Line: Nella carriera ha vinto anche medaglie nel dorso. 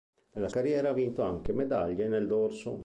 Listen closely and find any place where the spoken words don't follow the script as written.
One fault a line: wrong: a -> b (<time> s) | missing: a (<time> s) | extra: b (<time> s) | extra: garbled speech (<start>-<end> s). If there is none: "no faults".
no faults